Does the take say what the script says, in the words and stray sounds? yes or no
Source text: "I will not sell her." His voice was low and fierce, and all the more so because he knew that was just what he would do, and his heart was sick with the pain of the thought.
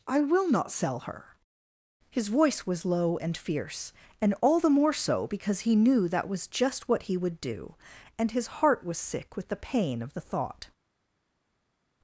yes